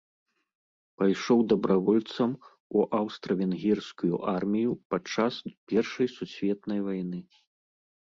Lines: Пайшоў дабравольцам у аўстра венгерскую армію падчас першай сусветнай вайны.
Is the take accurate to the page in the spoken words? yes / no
yes